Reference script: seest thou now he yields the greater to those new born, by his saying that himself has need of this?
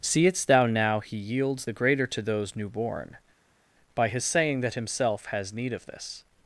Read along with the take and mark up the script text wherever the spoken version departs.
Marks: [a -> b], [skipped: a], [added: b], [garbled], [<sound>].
seest thou now he yields the greater to those new born, by his saying that himself has need of this?